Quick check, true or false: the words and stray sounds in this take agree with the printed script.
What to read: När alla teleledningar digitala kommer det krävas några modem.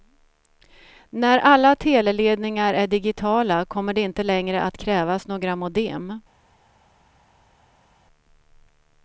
false